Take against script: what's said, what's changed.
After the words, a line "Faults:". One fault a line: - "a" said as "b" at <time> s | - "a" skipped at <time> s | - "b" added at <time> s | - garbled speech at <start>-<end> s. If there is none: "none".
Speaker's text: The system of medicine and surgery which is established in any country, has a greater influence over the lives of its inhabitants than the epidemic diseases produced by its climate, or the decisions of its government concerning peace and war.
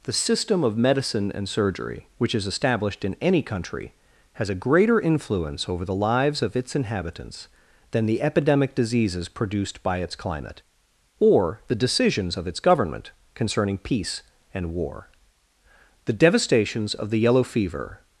The system of medicine and surgery which is established in any country, has a greater influence over the lives of its inhabitants than the epidemic diseases produced by its climate, or the decisions of its government concerning peace and war. The devastations of the yellow fever
Faults:
- "The devastations of the yellow fever" added at 16.1 s